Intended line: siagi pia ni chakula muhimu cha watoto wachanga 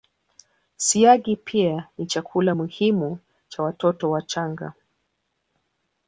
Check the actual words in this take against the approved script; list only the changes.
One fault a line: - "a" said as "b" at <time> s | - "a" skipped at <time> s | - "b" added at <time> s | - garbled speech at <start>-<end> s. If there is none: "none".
none